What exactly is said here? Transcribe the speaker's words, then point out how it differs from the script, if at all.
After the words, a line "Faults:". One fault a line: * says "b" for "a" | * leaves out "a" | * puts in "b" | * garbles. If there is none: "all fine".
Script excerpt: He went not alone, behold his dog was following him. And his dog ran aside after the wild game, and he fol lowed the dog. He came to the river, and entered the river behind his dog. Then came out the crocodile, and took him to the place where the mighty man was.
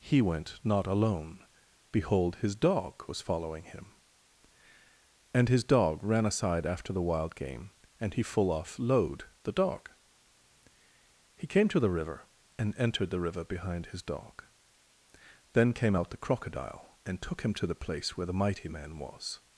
He went not alone, behold his dog was following him. And his dog ran aside after the wild game, and he full off lowed the dog. He came to the river, and entered the river behind his dog. Then came out the crocodile, and took him to the place where the mighty man was.
Faults:
* says "full off" for "fol"